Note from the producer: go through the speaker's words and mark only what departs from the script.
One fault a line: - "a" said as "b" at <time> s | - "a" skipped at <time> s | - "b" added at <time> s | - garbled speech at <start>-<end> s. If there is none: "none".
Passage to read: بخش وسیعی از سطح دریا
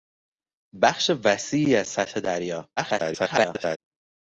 - garbled speech at 2.8-3.8 s